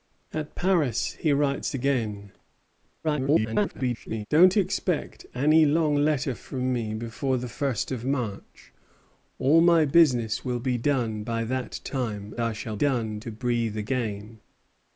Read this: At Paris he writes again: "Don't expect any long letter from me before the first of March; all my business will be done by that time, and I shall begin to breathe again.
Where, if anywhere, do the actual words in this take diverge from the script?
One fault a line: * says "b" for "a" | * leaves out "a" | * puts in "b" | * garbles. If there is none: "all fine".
* garbles
* leaves out "and"
* says "done" for "begin"